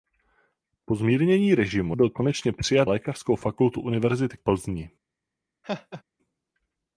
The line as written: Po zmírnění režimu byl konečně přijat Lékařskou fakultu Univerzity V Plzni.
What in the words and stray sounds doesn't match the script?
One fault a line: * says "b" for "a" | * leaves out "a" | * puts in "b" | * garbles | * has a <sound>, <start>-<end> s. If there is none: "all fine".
* has a laugh, 5.6-6.0 s